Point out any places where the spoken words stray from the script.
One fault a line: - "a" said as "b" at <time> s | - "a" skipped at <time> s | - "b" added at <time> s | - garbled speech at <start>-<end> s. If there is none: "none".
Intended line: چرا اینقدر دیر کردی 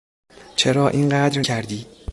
- "دیر" skipped at 1.4 s